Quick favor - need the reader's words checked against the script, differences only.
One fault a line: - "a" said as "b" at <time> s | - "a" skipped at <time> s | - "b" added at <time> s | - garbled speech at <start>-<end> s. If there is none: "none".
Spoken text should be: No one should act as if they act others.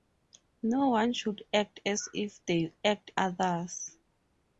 none